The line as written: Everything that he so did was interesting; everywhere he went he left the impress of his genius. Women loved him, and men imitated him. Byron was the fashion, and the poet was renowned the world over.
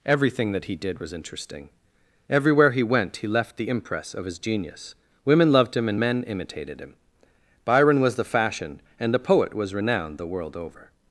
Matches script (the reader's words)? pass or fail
fail